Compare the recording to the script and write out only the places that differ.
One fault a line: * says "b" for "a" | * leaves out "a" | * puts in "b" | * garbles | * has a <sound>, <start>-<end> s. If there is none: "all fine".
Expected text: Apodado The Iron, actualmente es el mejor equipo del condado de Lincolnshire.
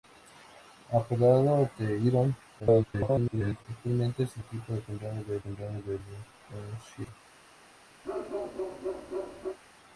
* garbles
* leaves out "mejor"
* puts in "condado de"
* has a bark, 8.0-9.6 s